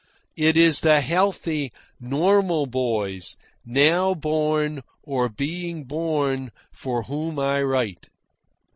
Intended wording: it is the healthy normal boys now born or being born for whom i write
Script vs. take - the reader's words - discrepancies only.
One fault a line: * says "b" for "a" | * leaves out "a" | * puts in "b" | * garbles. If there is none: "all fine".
all fine